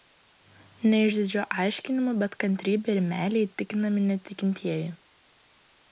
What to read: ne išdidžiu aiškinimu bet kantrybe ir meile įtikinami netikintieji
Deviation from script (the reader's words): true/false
false